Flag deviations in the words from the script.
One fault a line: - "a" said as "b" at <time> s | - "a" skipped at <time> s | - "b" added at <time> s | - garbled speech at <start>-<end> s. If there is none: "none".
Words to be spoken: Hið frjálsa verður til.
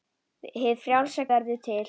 none